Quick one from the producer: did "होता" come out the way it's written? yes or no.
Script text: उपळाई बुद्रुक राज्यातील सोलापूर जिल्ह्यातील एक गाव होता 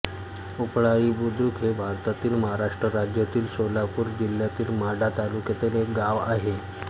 no